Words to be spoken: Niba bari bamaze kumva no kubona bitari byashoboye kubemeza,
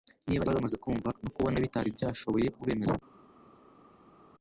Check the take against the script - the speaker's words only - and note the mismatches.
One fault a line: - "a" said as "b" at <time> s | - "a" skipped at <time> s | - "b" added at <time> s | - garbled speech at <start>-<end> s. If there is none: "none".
none